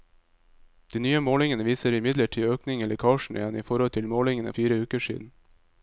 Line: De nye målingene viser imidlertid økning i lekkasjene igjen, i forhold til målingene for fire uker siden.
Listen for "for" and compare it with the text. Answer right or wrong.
wrong